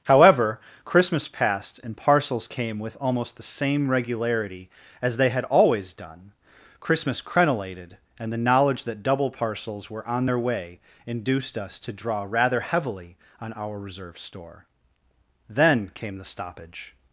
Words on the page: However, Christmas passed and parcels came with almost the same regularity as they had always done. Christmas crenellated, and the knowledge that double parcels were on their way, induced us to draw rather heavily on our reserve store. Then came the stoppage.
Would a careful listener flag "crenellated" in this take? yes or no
no